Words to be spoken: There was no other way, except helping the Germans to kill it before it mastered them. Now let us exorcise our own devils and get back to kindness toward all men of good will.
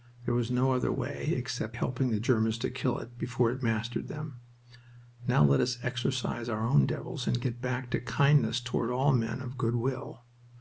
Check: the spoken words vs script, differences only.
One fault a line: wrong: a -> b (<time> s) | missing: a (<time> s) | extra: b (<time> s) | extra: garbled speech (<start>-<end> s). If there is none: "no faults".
no faults